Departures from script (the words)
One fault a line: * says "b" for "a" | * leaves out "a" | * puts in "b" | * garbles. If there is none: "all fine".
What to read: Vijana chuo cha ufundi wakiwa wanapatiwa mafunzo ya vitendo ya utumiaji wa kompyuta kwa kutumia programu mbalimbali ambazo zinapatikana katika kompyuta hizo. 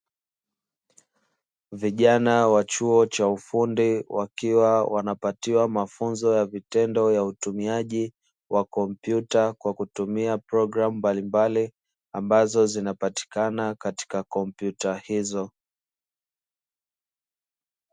* puts in "wa"